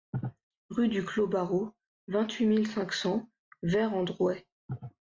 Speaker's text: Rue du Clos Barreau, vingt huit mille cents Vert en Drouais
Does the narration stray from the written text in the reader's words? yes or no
yes